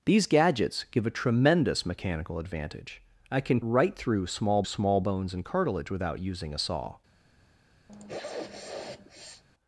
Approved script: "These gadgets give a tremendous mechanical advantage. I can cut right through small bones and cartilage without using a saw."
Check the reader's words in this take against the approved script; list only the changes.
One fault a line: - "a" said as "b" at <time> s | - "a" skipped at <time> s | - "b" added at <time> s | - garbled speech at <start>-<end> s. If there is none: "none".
- "cut" skipped at 3.6 s
- "small" added at 4.6 s